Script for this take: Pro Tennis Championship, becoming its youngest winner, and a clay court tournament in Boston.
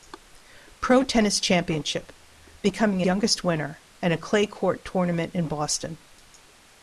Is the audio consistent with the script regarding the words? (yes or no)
no